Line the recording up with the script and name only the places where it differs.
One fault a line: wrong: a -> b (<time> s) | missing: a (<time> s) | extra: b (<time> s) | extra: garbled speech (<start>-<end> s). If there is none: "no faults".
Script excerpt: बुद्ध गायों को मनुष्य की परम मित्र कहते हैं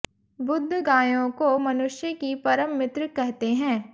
no faults